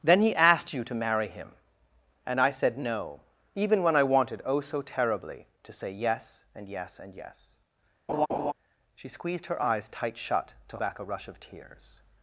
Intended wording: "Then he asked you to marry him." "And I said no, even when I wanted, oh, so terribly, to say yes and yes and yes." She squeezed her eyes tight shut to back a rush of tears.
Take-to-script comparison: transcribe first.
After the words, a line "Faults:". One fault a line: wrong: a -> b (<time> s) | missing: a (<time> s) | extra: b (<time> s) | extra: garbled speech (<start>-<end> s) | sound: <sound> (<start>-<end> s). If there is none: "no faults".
"Then he asked you to marry him." "And I said no, even when I wanted, oh, so terribly, to say yes and yes and yes." She squeezed her eyes tight shut to back a rush of tears.
Faults:
sound: laugh (8.1-8.5 s)